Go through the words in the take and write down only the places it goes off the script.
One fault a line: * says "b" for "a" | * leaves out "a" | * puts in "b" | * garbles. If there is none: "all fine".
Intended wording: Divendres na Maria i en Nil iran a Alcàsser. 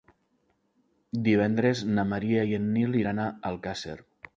all fine